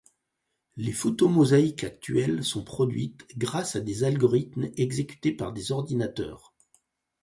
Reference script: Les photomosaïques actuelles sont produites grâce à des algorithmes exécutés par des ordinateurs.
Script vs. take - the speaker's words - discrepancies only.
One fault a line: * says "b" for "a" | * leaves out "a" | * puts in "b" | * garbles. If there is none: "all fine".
all fine